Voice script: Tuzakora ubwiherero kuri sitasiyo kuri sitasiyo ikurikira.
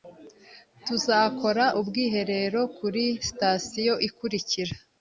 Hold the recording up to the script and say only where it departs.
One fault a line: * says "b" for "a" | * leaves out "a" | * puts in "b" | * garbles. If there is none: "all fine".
* leaves out "kuri sitasiyo"